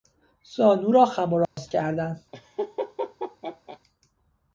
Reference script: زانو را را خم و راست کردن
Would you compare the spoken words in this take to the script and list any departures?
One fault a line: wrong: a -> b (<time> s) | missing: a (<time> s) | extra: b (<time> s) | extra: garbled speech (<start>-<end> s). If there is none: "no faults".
missing: را (1.1 s)